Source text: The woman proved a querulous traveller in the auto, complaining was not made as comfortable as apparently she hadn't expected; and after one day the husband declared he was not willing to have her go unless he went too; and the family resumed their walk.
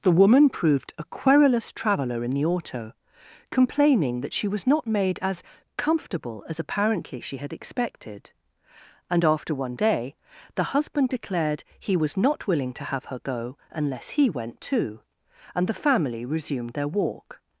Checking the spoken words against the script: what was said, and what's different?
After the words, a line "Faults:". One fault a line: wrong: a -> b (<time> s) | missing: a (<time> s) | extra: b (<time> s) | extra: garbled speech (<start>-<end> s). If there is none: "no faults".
The woman proved a querulous traveller in the auto, complaining that she was not made as comfortable as apparently she had expected; and after one day the husband declared he was not willing to have her go unless he went too; and the family resumed their walk.
Faults:
extra: that she (4.2 s)
wrong: hadn't -> had (7.4 s)